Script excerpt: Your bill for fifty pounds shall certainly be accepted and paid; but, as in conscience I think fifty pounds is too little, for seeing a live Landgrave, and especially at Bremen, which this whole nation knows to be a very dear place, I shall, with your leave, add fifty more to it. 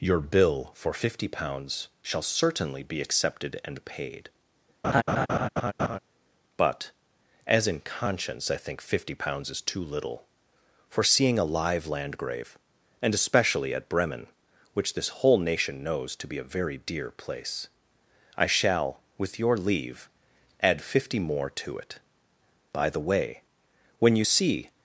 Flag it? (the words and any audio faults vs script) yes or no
yes